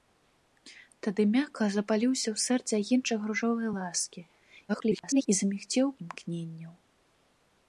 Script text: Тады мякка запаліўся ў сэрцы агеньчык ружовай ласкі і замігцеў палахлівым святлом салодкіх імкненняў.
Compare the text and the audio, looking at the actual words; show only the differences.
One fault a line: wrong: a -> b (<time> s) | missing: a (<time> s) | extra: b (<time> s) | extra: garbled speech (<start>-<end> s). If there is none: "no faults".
extra: garbled speech (4.7-5.3 s)
missing: палахлівым святлом салодкіх (5.9 s)